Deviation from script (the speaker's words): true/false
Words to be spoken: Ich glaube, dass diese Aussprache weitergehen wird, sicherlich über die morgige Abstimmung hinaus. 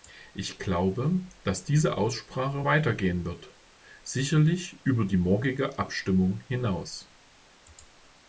false